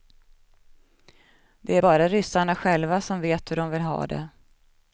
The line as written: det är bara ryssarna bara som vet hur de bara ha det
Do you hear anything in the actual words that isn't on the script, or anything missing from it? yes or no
yes